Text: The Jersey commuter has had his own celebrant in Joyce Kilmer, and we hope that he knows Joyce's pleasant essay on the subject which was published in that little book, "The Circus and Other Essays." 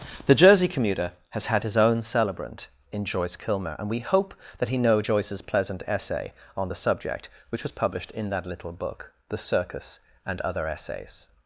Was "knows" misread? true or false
true